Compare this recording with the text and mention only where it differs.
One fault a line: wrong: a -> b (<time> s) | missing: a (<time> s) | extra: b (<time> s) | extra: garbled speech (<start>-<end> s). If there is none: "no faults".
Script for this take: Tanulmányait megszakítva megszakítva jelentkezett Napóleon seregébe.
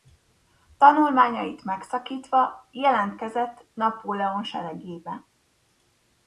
missing: megszakítva (2.7 s)